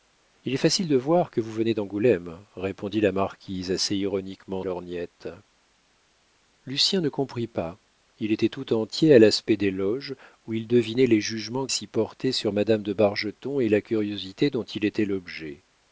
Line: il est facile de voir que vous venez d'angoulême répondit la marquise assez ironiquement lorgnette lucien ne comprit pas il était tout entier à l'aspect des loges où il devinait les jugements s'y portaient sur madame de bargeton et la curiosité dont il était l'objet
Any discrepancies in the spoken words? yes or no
no